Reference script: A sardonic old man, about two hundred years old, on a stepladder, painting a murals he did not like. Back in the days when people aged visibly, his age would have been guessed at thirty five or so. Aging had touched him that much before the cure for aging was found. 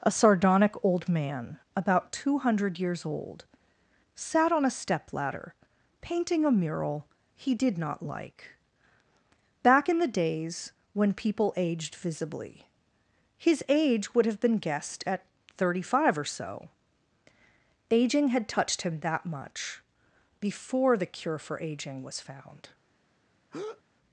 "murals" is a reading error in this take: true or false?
true